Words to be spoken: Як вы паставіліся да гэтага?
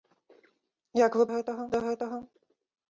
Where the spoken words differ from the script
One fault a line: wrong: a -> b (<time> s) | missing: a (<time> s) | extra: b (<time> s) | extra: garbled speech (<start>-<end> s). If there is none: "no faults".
wrong: паставіліся -> гэтага (1.3 s)